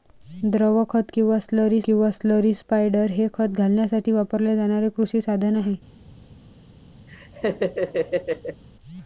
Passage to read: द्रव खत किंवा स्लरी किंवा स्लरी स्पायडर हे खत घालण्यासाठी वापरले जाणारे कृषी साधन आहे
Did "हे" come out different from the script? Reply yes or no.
no